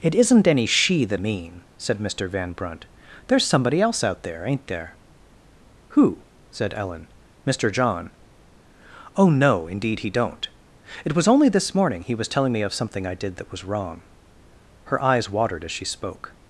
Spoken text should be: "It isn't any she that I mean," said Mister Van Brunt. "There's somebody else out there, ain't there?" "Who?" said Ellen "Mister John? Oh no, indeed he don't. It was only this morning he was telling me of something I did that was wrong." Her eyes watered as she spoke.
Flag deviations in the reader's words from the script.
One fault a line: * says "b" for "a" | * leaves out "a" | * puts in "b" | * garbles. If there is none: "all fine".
* leaves out "I"